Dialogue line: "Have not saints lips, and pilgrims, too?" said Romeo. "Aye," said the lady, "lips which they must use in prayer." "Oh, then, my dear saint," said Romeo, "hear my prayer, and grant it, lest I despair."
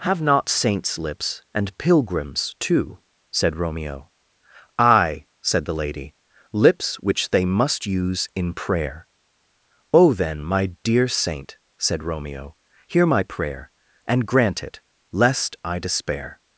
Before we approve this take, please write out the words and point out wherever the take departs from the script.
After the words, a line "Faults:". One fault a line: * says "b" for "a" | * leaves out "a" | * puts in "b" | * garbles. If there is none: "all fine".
"Have not saints lips, and pilgrims, too?" said Romeo. "Aye," said the lady, "lips which they must use in prayer." "Oh, then, my dear saint," said Romeo, "hear my prayer, and grant it, lest I despair."
Faults:
all fine